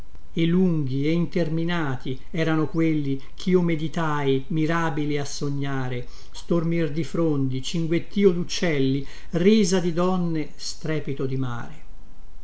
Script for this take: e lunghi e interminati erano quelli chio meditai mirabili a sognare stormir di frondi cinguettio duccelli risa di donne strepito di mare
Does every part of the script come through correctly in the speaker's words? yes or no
yes